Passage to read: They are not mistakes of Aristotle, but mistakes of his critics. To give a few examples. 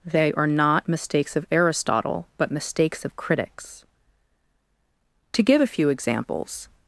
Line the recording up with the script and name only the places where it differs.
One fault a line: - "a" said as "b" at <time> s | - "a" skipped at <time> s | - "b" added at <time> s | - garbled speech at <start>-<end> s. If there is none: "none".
- "his" skipped at 3.1 s